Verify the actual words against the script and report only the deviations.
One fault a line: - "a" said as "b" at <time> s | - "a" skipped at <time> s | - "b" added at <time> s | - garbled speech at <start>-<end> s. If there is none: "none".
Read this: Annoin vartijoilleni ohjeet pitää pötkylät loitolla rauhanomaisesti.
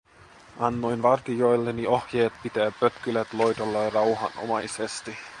none